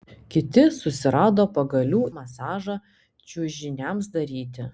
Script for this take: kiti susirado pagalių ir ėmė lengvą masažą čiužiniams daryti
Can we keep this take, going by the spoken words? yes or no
no